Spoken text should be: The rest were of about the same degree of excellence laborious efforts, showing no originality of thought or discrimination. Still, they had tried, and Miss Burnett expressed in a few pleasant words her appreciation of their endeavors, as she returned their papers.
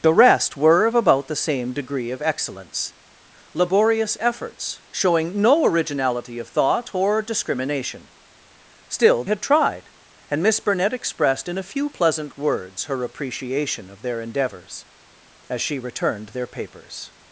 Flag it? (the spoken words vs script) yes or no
yes